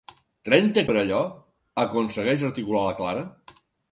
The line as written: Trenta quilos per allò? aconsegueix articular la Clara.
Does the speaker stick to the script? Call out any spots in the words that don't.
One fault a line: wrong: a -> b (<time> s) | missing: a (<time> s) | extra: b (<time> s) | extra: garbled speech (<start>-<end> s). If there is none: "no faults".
missing: quilos (0.8 s)